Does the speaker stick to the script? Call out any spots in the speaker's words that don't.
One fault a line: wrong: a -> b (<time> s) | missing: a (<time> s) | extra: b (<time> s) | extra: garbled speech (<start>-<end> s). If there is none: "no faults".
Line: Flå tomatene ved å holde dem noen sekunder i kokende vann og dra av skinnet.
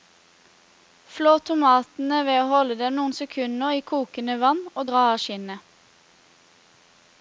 no faults